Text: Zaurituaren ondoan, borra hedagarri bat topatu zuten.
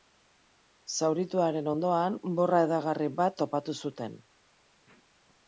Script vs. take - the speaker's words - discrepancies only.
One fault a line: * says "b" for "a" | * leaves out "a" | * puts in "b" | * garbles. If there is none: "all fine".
all fine